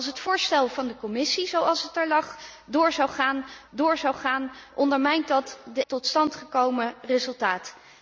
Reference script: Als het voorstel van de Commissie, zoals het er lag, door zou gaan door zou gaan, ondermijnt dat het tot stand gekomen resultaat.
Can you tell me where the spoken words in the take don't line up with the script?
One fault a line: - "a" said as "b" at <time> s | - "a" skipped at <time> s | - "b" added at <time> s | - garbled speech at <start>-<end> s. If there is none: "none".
none